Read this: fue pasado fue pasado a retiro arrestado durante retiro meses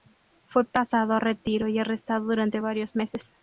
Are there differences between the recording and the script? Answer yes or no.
yes